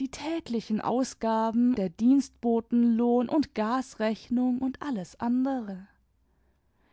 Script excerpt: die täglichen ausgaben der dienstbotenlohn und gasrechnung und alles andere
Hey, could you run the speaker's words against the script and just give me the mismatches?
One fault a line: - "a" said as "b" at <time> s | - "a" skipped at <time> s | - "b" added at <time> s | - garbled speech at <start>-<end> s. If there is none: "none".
none